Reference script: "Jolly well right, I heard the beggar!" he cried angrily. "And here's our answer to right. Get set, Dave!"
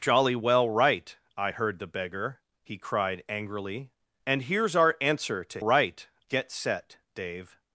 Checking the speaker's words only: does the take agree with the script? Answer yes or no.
yes